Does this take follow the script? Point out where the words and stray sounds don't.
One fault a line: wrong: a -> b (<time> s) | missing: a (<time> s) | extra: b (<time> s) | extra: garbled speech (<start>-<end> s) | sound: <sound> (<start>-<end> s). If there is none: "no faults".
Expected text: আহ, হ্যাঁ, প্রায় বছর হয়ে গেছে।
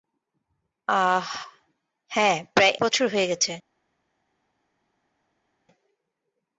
no faults